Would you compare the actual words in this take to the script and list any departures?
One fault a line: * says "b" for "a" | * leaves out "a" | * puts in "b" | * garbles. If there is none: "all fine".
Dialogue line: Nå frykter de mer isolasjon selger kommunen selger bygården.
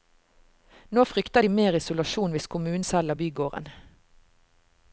* says "hvis" for "selger"